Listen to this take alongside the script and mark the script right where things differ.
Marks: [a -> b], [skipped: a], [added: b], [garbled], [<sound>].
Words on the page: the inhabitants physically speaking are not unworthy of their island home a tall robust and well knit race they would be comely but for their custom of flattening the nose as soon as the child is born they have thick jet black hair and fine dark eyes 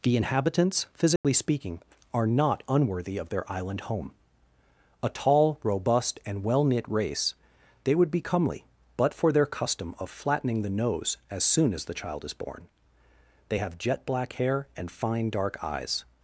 the inhabitants physically [dropout] speaking are not unworthy of their island home a tall robust and well knit race they would be comely but for their custom of flattening the nose as soon as the child is born they have [skipped: thick] jet black hair and fine dark eyes